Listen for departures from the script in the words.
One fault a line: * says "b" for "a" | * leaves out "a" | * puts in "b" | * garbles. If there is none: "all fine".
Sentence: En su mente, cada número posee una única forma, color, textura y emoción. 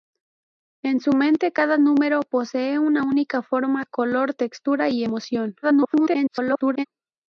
* garbles